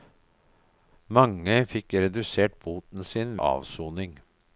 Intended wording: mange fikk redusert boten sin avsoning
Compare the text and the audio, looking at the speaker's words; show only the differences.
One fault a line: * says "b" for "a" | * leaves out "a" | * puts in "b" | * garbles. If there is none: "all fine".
all fine